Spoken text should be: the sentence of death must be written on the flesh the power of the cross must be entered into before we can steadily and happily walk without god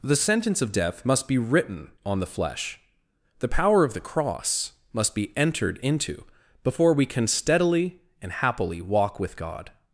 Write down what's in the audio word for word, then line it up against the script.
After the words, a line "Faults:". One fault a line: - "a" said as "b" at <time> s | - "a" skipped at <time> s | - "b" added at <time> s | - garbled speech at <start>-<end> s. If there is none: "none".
the sentence of death must be written on the flesh the power of the cross must be entered into before we can steadily and happily walk with god
Faults:
- "without" said as "with" at 9.2 s